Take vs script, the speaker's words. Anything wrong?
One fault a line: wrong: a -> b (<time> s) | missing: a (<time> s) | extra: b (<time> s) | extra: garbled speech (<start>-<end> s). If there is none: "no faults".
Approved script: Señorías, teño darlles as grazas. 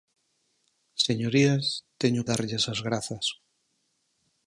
no faults